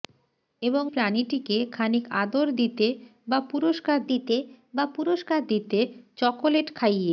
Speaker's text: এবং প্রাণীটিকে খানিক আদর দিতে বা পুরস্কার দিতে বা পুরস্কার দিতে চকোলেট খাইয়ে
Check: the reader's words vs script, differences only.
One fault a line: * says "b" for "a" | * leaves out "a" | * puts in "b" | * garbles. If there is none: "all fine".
all fine